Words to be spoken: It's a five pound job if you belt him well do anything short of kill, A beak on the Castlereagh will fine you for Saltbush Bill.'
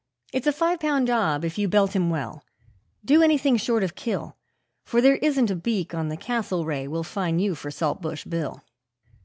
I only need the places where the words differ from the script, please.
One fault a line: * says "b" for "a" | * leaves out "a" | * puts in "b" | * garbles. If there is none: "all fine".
* puts in "For there isn't"